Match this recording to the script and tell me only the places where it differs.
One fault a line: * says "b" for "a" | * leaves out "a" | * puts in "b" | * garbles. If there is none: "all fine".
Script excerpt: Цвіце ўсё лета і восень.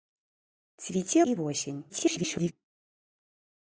* leaves out "ўсё лета"
* garbles